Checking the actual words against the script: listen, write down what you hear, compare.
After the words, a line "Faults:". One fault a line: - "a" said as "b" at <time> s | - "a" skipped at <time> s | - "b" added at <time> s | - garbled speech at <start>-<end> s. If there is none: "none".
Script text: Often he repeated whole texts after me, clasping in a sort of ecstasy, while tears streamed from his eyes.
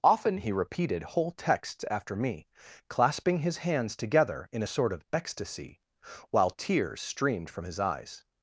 Often he repeated whole texts after me, clasping his hands together in a sort of ecstasy, while tears streamed from his eyes.
Faults:
- "his hands together" added at 3.4 s